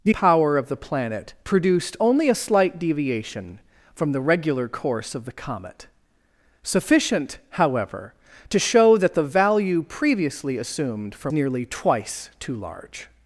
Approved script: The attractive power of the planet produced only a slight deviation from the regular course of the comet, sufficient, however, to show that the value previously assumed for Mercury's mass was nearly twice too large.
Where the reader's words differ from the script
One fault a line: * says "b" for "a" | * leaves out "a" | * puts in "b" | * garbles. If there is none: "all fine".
* leaves out "attractive"
* leaves out "Mercury's mass was"